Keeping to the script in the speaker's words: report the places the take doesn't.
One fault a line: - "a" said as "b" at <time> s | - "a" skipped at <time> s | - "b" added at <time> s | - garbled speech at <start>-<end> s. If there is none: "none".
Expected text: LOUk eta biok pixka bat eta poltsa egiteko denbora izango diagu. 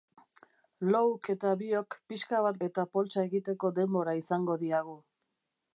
none